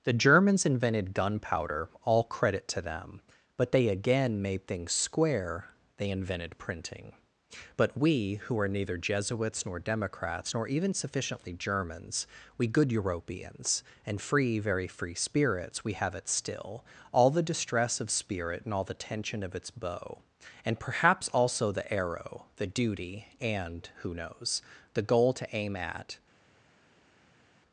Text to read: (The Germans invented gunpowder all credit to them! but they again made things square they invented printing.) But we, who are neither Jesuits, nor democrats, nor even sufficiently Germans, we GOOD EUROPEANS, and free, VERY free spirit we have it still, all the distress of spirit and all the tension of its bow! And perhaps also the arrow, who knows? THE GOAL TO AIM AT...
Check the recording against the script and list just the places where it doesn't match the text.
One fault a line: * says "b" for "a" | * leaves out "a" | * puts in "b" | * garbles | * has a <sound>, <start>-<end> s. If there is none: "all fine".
* says "spirits" for "spirit"
* puts in "the duty and"